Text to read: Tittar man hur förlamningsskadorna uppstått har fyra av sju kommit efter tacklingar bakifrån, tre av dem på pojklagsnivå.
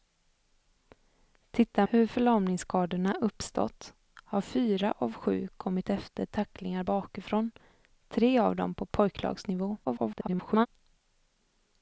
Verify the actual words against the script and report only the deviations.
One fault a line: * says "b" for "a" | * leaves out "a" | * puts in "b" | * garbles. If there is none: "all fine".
* leaves out "man"
* garbles